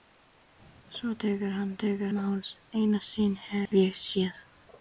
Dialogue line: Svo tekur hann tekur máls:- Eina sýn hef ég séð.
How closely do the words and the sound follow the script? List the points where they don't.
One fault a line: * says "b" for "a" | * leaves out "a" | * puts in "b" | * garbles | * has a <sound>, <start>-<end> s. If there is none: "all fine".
* has a dropout, 3.7-3.7 s